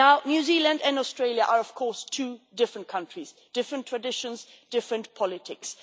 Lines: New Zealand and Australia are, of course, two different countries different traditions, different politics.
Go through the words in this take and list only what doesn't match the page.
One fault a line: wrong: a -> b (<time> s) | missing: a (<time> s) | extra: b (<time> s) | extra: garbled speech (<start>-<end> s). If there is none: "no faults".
no faults